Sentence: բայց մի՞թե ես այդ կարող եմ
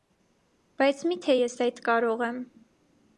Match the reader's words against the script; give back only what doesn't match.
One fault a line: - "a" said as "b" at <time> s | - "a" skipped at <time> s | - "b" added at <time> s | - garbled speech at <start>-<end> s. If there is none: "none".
none